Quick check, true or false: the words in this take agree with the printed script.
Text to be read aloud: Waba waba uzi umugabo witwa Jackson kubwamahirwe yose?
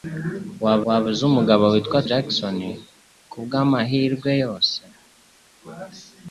true